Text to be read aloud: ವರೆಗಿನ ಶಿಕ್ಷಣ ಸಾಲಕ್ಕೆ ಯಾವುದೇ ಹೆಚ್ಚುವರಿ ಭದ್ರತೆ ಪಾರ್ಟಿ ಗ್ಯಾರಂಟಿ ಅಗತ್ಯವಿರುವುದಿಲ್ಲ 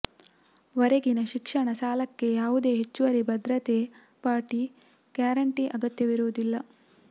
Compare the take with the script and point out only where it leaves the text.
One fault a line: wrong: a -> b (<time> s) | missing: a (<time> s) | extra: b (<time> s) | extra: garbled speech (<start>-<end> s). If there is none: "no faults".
no faults